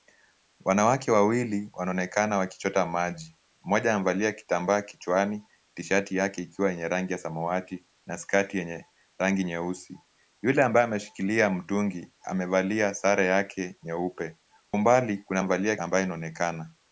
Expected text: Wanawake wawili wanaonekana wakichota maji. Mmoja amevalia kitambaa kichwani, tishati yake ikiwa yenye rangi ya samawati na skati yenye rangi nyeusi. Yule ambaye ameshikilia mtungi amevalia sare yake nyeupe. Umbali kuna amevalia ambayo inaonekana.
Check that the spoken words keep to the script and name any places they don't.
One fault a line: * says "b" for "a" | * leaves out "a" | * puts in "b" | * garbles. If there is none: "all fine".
all fine